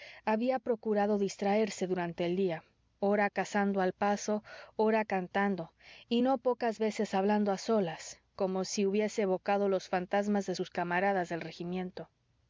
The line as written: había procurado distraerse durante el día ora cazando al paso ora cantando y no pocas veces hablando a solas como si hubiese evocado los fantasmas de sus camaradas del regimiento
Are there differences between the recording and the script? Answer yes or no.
no